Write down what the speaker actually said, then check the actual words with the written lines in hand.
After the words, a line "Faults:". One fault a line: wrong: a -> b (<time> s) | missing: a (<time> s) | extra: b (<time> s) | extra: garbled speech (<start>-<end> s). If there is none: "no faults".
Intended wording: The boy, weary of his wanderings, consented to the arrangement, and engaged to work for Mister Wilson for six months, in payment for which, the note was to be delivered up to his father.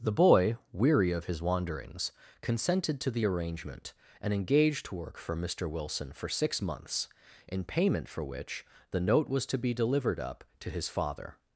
The boy, weary of his wanderings, consented to the arrangement, and engaged to work for Mister Wilson for six months, in payment for which, the note was to be delivered up to his father.
Faults:
no faults